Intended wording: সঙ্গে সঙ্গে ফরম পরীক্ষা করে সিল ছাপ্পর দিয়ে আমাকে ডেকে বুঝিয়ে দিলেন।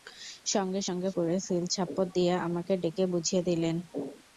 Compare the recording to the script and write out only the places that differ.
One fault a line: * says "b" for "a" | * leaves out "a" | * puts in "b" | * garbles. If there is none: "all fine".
* leaves out "ফরম পরীক্ষা"